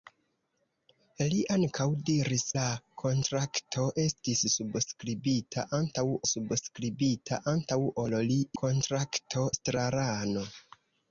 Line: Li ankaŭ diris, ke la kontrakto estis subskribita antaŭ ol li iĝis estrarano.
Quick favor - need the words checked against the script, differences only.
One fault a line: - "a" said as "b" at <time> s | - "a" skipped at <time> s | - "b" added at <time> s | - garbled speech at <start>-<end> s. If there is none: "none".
- "ke" skipped at 2.5 s
- "subskribita antaŭ" added at 6.3 s
- "iĝis" said as "kontrakto" at 8.6 s